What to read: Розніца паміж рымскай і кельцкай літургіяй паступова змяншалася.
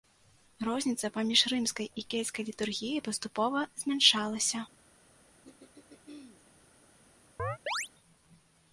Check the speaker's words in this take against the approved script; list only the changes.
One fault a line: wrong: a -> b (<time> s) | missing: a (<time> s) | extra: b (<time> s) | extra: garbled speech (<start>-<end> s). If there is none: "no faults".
no faults